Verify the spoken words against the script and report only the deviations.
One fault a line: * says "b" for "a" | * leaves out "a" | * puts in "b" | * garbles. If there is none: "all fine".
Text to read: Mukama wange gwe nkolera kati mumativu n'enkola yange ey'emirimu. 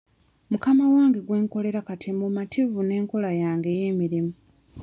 all fine